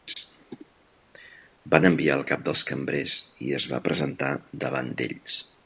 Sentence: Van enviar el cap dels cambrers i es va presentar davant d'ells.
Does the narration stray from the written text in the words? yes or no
no